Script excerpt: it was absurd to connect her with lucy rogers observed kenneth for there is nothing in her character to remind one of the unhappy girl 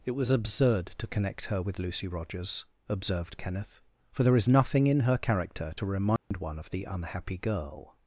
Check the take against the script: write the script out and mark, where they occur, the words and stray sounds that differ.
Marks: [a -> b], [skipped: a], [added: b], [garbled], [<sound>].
it was absurd to connect her with lucy rogers observed kenneth for there is nothing in her character to remind [dropout] one of the unhappy girl